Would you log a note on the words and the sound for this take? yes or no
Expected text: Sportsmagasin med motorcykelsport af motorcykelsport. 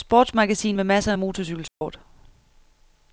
yes